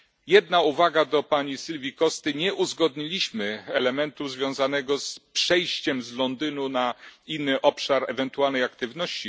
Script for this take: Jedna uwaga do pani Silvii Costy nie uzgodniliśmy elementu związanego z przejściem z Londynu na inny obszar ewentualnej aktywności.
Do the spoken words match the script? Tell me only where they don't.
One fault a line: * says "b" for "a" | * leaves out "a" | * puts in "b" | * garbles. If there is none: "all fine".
all fine